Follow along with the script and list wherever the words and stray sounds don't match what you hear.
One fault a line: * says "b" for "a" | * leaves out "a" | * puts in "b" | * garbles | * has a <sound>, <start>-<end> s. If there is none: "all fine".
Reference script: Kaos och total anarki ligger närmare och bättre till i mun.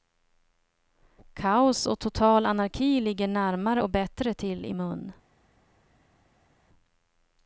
all fine